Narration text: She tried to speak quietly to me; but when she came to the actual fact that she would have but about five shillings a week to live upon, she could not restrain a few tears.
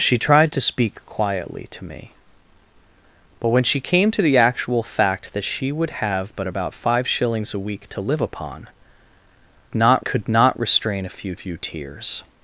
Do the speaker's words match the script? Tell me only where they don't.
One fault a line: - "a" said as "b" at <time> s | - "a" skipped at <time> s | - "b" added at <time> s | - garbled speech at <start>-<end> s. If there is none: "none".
- "she" said as "not" at 9.7 s
- "few" added at 11.4 s